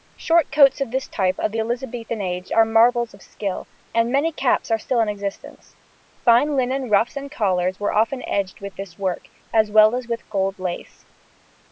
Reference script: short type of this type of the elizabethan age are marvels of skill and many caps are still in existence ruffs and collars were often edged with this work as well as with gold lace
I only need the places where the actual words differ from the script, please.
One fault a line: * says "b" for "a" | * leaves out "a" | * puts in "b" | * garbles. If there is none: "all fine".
* says "coats" for "type"
* puts in "fine linen"